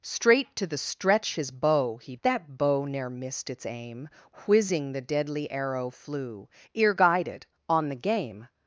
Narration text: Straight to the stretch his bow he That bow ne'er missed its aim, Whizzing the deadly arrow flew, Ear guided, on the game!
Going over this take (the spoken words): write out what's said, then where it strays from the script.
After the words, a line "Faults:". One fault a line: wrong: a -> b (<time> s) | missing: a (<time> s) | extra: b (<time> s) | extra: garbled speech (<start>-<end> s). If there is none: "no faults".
Straight to the stretch his bow he That bow ne'er missed its aim, Whizzing the deadly arrow flew, Ear guided, on the game!
Faults:
no faults